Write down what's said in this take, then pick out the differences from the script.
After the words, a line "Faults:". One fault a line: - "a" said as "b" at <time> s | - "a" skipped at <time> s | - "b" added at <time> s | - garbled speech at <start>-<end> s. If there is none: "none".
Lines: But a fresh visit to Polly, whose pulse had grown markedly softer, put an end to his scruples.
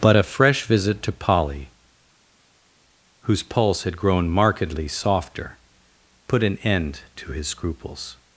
But a fresh visit to Polly, whose pulse had grown markedly softer, put an end to his scruples.
Faults:
none